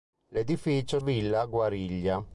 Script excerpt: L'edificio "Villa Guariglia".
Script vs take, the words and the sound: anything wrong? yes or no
no